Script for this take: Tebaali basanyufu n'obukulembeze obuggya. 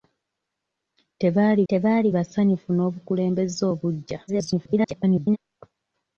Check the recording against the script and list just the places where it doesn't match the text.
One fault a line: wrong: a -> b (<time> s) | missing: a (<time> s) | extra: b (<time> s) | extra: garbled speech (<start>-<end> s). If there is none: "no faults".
extra: tebaali (1.7 s)
extra: garbled speech (4.3-5.4 s)